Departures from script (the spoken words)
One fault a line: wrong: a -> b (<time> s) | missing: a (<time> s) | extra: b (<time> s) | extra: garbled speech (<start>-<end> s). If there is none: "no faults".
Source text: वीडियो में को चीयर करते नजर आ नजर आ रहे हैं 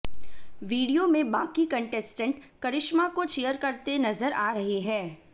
extra: बाकी कंटेस्टेंट करिश्मा (1.3 s)
missing: नजर आ (4.5 s)